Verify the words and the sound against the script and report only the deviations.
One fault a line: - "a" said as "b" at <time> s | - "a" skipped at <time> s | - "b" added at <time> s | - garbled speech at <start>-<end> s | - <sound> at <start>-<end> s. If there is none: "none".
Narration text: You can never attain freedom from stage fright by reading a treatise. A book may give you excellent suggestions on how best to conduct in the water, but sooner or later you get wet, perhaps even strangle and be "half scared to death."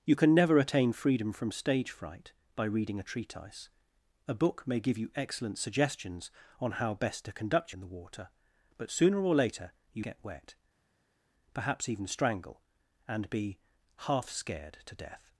none